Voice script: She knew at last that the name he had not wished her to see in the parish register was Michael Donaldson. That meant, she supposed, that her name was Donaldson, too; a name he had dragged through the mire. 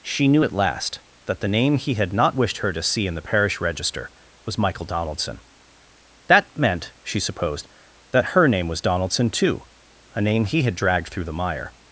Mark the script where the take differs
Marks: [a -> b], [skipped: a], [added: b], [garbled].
She knew at last that the name he had not wished her to see in the parish register was Michael Donaldson. That meant, she supposed, that her name was Donaldson, too; a name he had dragged through the mire.